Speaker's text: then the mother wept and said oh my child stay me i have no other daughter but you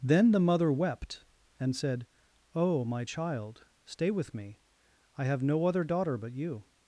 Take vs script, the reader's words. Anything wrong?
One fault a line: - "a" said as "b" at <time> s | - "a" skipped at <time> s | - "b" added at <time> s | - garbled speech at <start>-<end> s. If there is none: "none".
- "with" added at 4.1 s